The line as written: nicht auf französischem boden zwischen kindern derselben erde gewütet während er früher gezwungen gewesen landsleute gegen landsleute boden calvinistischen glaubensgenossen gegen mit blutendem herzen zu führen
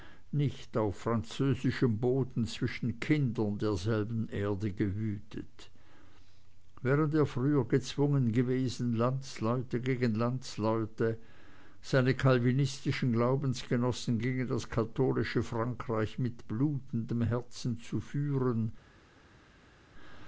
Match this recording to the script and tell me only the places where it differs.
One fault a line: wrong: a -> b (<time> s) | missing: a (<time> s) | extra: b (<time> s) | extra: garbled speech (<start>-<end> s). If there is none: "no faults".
wrong: boden -> seine (11.8 s)
extra: das katholische frankreich (14.5 s)